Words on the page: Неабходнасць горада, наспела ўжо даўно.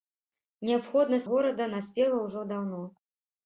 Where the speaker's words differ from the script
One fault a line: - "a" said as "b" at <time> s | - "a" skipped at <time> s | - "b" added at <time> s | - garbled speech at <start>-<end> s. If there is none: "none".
none